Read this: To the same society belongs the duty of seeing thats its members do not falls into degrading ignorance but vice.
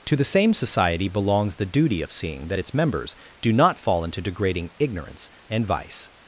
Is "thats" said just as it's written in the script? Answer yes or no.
no